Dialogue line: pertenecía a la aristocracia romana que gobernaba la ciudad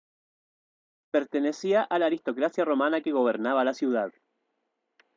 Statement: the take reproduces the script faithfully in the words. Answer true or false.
true